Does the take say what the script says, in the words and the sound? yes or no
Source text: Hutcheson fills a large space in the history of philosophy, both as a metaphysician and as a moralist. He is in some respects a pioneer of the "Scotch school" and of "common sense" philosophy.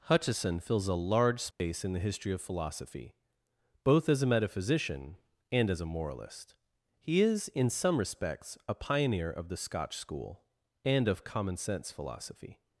no